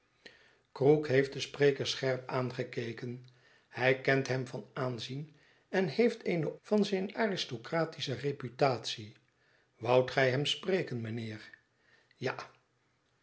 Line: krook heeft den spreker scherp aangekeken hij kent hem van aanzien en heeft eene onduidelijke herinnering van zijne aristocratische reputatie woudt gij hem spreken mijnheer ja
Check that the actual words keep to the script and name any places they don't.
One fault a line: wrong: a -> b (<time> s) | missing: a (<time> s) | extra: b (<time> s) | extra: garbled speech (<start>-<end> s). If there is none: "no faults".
missing: onduidelijke herinnering (6.6 s)